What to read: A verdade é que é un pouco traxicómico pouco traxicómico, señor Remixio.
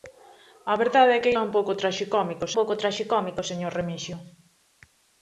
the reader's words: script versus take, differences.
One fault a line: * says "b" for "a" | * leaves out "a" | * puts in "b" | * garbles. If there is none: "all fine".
all fine